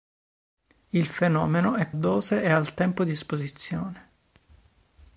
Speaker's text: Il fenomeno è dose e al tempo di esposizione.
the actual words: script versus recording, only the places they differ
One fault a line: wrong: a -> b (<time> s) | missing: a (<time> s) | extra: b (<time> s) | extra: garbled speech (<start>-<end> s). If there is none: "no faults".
no faults